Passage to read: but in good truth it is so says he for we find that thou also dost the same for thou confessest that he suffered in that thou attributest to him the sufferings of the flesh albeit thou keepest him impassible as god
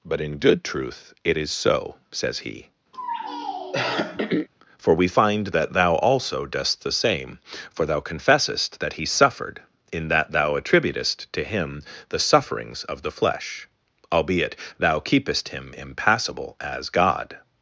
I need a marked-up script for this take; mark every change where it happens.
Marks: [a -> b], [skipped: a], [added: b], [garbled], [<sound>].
but in good truth it is so says he [throat clearing] for we find that thou also dost the same for thou confessest that he suffered in that thou attributest to him the sufferings of the flesh albeit thou keepest him impassible as god